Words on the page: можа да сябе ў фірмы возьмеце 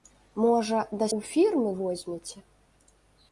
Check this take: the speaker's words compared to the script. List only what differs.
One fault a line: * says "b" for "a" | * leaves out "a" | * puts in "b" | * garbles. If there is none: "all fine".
* leaves out "сябе"